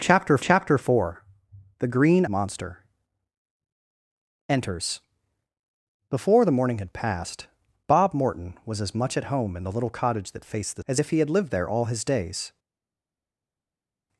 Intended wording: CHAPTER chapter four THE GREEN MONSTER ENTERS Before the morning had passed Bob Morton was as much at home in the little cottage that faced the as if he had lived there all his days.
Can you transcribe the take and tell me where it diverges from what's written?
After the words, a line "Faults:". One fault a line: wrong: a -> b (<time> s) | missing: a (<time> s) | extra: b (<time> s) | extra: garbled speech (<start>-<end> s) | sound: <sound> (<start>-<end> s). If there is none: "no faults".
CHAPTER chapter four THE GREEN MONSTER ENTERS Before the morning had passed Bob Morton was as much at home in the little cottage that faced the as if he had lived there all his days.
Faults:
no faults